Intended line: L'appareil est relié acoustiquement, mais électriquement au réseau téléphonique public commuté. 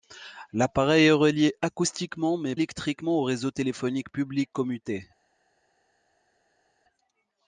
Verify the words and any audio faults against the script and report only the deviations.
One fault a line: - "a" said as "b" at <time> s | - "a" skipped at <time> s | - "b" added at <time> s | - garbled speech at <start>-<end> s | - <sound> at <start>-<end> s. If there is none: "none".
none